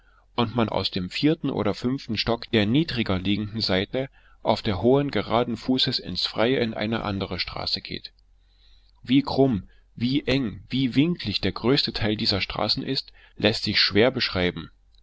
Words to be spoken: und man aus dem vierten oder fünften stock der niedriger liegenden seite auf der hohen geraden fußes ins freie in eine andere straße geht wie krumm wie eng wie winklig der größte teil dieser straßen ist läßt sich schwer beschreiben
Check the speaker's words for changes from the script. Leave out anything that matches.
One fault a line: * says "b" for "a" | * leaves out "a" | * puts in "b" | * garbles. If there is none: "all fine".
all fine